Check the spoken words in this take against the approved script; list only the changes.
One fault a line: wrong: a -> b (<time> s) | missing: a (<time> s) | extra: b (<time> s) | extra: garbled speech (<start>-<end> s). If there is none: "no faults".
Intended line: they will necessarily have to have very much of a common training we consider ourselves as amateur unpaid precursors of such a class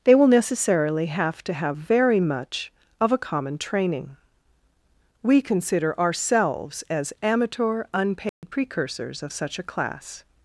no faults